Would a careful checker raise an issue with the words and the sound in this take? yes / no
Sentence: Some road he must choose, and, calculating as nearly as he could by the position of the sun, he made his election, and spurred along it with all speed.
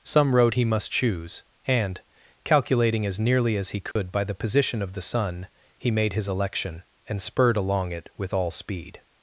yes